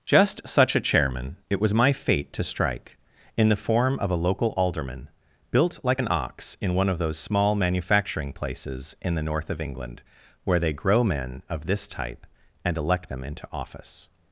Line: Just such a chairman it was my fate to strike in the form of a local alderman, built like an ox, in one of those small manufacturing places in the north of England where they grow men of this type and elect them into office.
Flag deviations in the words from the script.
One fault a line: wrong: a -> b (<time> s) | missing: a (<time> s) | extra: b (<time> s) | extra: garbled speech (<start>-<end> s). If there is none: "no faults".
no faults